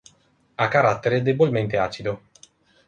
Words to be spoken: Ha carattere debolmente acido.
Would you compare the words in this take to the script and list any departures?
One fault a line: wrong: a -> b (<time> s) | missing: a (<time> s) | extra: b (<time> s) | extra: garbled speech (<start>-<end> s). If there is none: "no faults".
no faults